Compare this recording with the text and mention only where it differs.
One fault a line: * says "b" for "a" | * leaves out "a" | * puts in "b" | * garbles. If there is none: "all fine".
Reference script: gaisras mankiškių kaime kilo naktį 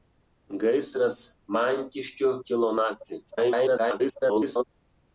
* leaves out "kaime"
* garbles